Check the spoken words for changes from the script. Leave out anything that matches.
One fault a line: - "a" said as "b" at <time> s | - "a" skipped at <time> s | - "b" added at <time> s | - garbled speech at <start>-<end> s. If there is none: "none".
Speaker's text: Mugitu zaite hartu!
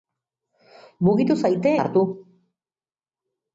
none